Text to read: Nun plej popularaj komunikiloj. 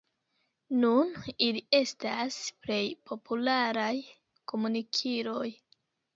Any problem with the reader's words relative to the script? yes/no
yes